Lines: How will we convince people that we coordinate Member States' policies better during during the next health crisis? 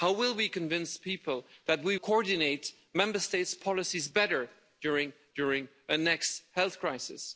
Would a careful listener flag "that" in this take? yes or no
no